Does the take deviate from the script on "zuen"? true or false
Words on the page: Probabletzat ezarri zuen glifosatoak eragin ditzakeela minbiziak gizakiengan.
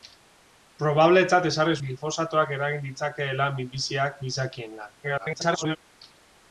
true